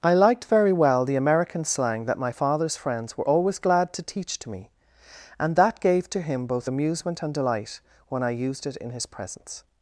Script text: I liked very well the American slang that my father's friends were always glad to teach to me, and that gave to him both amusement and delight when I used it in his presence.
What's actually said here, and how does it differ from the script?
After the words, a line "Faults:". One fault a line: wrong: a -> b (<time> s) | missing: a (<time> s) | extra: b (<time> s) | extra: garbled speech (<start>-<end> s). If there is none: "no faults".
I liked very well the American slang that my father's friends were always glad to teach to me, and that gave to him both amusement and delight when I used it in his presence.
Faults:
no faults